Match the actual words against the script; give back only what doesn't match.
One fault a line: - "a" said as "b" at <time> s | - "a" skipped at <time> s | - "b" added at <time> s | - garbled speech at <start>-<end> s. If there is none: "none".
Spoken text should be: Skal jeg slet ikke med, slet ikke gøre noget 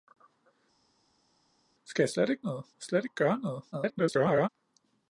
- "med" said as "noget" at 2.4 s
- garbled speech at 3.7-4.5 s